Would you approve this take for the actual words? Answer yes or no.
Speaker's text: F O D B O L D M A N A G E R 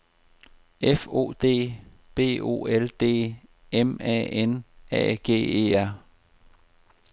yes